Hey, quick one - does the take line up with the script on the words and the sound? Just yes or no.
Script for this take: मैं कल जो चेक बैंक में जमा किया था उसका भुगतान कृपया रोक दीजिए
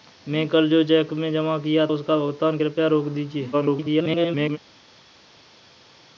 no